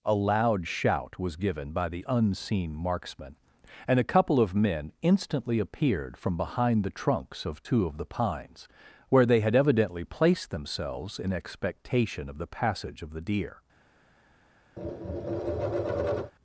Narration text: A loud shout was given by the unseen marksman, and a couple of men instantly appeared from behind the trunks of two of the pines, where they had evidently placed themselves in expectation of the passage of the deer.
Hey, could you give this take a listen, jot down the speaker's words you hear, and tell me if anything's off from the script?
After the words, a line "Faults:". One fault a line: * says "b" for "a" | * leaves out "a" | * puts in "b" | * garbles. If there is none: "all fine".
A loud shout was given by the unseen marksman, and a couple of men instantly appeared from behind the trunks of two of the pines, where they had evidently placed themselves in expectation of the passage of the deer.
Faults:
all fine